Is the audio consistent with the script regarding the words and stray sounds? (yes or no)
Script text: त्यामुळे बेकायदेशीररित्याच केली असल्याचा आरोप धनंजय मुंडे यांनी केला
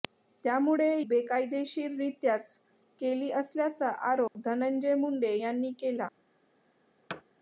no